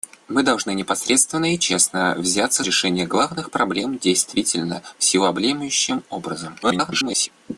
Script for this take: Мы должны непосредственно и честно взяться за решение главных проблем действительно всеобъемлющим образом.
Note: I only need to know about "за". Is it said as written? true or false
false